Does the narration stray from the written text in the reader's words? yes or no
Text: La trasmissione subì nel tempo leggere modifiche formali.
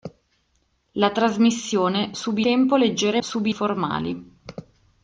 yes